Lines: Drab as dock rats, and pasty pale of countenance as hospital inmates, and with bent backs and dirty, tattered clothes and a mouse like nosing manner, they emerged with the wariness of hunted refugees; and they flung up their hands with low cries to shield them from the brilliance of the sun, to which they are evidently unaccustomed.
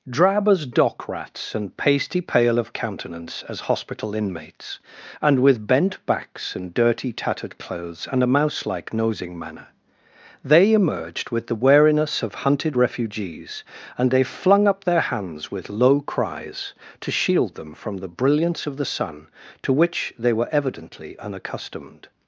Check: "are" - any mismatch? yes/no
yes